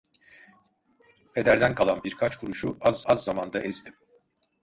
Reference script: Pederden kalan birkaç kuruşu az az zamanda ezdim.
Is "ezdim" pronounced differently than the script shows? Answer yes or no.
no